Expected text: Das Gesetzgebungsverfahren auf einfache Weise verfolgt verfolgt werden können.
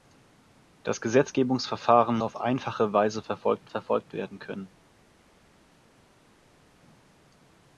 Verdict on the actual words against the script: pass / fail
pass